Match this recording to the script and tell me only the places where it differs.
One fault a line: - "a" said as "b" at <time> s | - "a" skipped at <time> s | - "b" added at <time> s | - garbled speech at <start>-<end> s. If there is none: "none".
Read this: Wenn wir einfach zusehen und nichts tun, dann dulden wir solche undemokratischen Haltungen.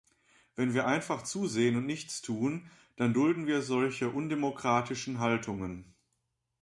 none